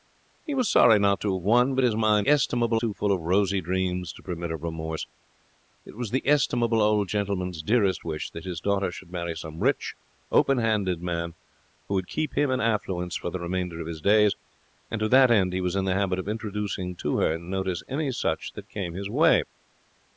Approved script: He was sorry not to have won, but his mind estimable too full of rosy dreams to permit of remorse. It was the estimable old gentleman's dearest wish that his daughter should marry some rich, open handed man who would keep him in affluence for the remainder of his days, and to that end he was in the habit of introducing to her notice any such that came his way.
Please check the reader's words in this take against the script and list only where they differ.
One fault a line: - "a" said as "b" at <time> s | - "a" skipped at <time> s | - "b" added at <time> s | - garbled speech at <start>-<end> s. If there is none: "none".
none